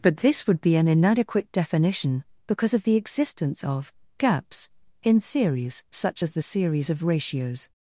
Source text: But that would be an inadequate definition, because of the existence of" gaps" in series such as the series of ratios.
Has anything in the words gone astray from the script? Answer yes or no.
yes